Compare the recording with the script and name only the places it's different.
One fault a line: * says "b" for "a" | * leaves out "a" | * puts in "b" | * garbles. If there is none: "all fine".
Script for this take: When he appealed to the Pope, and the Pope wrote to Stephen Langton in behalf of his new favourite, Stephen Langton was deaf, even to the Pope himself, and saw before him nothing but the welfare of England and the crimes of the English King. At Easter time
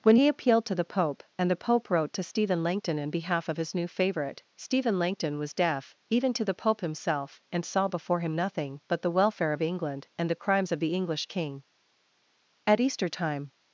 all fine